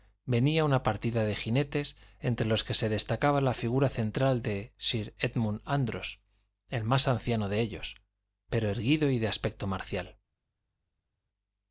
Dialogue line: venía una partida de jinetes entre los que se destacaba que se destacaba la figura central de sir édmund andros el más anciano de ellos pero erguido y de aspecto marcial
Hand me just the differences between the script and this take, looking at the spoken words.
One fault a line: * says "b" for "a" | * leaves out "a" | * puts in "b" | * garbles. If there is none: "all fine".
* leaves out "que se destacaba"